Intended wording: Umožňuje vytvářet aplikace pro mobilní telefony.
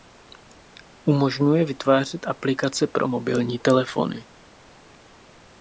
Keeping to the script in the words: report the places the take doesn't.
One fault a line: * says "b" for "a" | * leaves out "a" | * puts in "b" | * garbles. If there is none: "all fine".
all fine